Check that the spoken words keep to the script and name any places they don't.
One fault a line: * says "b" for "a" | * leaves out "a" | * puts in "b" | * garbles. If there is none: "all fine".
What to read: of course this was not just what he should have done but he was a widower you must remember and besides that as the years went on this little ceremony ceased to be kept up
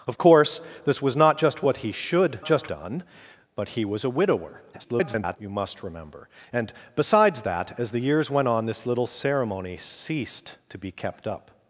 * says "just" for "have"
* garbles